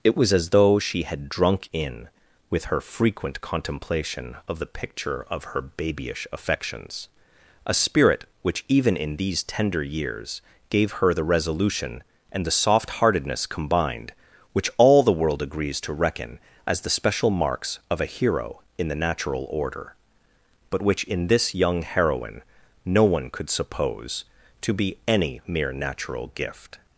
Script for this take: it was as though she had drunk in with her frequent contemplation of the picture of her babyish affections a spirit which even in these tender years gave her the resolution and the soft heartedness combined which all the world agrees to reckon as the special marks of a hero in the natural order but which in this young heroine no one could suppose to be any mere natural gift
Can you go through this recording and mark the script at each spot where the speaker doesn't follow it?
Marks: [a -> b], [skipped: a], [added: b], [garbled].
it was as though she had drunk in with her frequent contemplation of the picture of her babyish affections a spirit which even in these tender years gave her the resolution and the soft heartedness combined which all the world agrees to reckon as the special marks of a hero in the natural order but which in this young heroine no one could suppose to be any mere natural gift